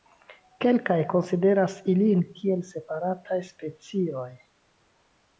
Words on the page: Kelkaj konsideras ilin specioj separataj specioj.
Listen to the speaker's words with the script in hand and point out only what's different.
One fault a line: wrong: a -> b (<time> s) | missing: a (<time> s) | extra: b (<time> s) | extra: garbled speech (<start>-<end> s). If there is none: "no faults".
wrong: specioj -> kiel (2.4 s)